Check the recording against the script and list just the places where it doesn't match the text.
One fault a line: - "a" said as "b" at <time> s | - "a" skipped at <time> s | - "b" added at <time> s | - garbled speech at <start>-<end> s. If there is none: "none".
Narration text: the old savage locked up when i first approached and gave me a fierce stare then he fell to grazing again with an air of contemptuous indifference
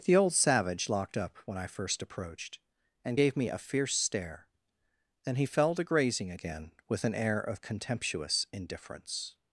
none